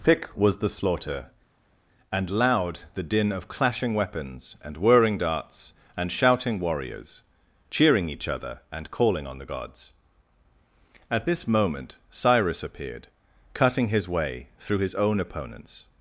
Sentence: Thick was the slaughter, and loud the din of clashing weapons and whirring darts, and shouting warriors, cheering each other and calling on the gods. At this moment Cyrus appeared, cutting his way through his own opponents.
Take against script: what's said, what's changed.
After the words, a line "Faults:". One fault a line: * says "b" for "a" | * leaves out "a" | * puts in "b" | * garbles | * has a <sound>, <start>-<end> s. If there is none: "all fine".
Thick was the slaughter, and loud the din of clashing weapons and whirring darts, and shouting warriors, cheering each other and calling on the gods. At this moment Cyrus appeared, cutting his way through his own opponents.
Faults:
all fine